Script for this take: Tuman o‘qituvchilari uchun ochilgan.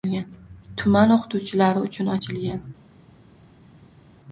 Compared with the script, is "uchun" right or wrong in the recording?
right